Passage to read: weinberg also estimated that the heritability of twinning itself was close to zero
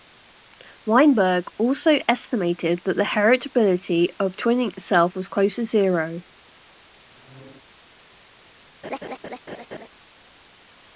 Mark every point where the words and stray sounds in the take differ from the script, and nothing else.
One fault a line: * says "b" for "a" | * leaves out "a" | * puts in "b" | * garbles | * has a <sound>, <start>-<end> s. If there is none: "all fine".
* has a squeak, 7.1-7.6 s
* has a laugh, 8.8-9.9 s